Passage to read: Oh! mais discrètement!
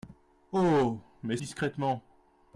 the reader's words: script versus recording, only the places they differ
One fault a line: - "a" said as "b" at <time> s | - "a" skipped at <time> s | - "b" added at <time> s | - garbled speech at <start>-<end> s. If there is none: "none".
none